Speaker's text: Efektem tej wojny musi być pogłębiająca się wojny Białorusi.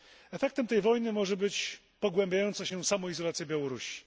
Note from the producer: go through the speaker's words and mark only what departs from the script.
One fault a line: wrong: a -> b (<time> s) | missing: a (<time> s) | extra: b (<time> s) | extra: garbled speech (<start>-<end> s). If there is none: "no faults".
wrong: musi -> może (1.1 s)
wrong: wojny -> samoizolacja (2.8 s)